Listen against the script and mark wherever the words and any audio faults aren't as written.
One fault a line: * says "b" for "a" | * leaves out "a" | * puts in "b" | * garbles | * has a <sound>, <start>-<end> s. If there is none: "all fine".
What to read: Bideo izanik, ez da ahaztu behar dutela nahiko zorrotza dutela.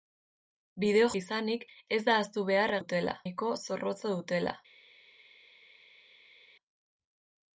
all fine